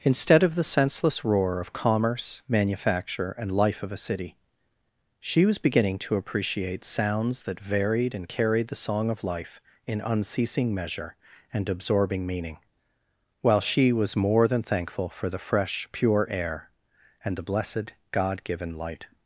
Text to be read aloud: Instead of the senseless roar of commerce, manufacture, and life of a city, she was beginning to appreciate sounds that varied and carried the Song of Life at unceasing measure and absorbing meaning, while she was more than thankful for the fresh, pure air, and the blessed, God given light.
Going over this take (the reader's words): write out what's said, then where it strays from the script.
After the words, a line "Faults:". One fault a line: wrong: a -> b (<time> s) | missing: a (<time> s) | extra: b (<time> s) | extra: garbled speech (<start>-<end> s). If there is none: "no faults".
Instead of the senseless roar of commerce, manufacture, and life of a city, she was beginning to appreciate sounds that varied and carried the Song of Life in unceasing measure and absorbing meaning, while she was more than thankful for the fresh, pure air, and the blessed, God given light.
Faults:
wrong: at -> in (9.8 s)